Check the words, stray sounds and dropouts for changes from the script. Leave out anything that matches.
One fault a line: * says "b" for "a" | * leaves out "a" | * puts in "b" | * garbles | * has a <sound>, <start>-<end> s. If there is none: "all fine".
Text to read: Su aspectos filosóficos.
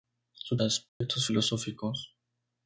* has a dropout, 0.9-1.0 s